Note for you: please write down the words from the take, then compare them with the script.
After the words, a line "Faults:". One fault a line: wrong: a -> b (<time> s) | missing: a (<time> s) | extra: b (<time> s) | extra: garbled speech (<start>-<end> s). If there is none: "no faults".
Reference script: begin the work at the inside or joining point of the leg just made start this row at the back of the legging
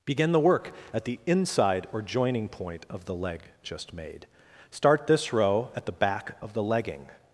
begin the work at the inside or joining point of the leg just made start this row at the back of the legging
Faults:
no faults